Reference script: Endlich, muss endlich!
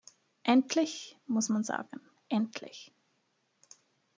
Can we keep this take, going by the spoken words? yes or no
no